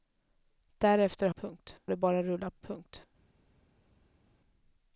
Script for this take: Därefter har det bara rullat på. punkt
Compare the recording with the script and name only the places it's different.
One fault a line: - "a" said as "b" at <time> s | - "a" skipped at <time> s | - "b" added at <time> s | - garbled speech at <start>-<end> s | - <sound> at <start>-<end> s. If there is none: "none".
- "har" said as "punkt" at 1.3 s
- "på" skipped at 2.6 s